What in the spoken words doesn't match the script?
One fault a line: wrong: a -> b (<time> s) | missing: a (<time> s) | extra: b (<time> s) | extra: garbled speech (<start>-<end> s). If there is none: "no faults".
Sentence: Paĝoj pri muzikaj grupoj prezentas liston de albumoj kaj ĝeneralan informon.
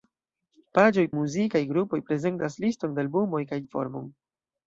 missing: pri (1.0 s)
missing: ĝeneralan (3.6 s)